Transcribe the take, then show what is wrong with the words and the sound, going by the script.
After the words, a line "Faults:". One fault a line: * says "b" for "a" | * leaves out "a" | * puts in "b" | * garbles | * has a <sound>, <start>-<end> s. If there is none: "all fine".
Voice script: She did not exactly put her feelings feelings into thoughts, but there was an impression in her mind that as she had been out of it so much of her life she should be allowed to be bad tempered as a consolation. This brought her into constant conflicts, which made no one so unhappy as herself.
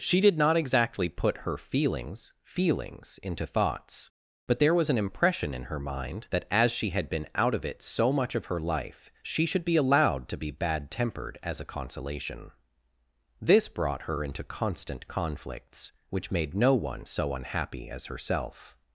She did not exactly put her feelings feelings into thoughts, but there was an impression in her mind that as she had been out of it so much of her life she should be allowed to be bad tempered as a consolation. This brought her into constant conflicts, which made no one so unhappy as herself.
Faults:
all fine